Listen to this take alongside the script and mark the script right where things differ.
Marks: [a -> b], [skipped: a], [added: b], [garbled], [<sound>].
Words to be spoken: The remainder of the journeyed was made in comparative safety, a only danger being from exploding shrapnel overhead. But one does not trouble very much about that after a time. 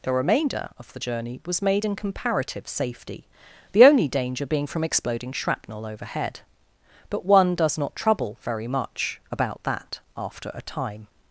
The remainder of the [journeyed -> journey] was made in comparative safety, [a -> the] only danger being from exploding shrapnel overhead. But one does not trouble very much about that after a time.